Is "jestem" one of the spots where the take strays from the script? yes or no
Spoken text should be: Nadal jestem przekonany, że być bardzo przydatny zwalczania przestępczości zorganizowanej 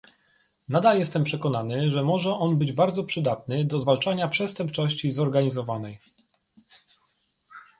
no